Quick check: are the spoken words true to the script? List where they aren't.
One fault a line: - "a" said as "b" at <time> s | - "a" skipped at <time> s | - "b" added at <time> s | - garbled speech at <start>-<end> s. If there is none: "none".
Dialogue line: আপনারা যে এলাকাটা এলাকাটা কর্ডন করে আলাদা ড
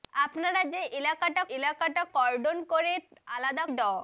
none